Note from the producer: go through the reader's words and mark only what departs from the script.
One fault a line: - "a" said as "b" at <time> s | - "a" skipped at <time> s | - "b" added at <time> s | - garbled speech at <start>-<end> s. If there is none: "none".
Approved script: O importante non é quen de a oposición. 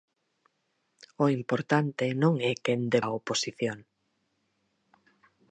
none